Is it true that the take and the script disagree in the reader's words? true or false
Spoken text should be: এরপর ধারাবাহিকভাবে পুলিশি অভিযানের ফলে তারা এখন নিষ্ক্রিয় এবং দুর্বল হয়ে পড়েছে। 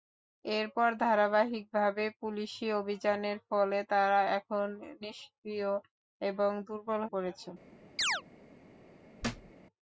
true